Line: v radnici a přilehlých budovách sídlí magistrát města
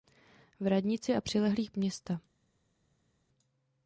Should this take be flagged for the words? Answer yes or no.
yes